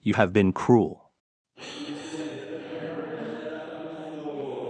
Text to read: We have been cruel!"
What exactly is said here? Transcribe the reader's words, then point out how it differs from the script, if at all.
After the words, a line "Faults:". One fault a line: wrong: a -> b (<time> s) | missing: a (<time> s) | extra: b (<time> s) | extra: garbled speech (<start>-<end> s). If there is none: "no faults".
You have been cruel!"
Faults:
wrong: We -> You (0.0 s)